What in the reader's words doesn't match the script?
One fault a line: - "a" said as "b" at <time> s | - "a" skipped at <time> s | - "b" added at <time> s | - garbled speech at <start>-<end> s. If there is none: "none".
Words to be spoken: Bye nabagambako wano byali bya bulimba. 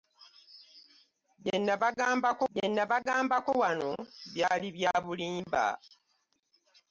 - "bye nabagambako" added at 2.5 s